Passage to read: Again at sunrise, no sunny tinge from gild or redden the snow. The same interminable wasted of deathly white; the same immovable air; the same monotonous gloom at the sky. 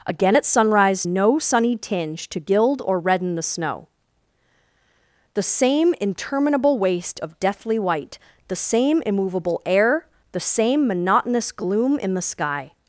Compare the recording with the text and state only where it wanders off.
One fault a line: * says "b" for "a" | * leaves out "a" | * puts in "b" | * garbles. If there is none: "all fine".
* says "to" for "from"
* says "waste" for "wasted"
* says "in" for "at"